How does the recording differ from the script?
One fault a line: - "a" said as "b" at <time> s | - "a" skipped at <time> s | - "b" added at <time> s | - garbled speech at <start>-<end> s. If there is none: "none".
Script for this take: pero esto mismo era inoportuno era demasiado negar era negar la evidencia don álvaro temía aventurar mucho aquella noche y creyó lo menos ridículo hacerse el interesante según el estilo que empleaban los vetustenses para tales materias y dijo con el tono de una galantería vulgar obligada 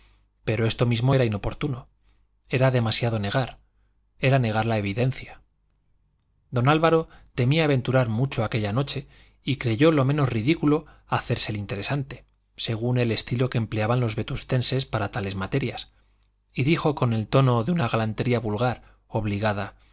none